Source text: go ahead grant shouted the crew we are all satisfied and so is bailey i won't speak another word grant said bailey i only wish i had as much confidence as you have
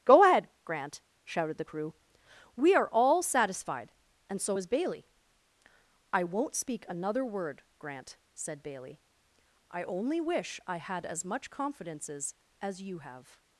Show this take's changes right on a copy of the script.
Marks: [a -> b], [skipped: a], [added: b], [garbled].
go ahead grant shouted the crew we are all satisfied and so is bailey i won't speak another word grant said bailey i only wish i had as much [confidence -> confidences] as you have